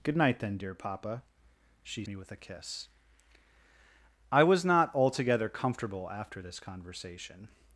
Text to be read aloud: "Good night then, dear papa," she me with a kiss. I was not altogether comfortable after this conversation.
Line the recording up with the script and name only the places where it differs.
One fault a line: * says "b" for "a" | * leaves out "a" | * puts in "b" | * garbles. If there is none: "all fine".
all fine